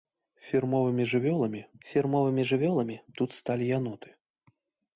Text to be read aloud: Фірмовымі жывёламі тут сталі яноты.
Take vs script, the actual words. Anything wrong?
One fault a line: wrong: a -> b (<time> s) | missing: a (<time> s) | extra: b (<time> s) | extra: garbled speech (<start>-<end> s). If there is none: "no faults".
extra: фірмовымі жывёламі (1.9 s)